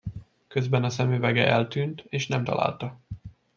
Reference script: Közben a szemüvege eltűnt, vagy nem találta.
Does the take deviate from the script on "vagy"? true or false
true